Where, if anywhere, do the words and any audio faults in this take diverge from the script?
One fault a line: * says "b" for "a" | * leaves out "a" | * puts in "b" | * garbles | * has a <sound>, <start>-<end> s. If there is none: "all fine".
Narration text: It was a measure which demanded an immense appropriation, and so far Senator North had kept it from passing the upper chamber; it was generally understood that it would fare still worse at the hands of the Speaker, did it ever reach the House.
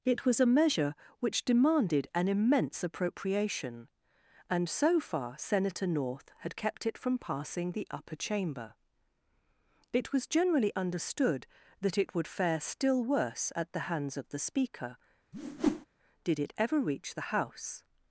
* has a whoosh, 15.3-15.9 s